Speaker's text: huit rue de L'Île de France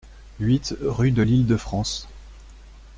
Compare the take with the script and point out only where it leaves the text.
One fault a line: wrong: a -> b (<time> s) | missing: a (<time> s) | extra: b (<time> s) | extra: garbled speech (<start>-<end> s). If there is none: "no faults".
no faults